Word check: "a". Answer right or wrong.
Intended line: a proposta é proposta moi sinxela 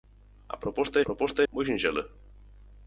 right